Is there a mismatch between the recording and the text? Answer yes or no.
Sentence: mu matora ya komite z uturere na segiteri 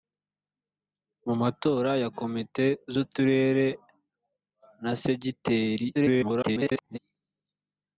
yes